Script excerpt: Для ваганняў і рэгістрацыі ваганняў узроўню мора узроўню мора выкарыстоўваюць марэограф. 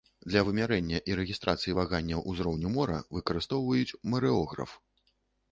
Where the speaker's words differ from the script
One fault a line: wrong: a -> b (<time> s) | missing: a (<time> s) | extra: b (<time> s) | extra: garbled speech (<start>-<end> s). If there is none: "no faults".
wrong: ваганняў -> вымярэння (0.4 s)
missing: узроўню мора (3.0 s)